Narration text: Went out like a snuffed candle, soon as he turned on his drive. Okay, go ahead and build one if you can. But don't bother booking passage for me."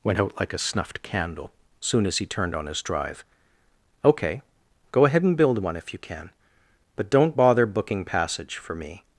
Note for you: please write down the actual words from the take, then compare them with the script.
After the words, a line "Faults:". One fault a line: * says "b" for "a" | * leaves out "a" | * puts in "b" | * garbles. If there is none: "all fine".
Went out like a snuffed candle, soon as he turned on his drive. Okay, go ahead and build one if you can. But don't bother booking passage for me."
Faults:
all fine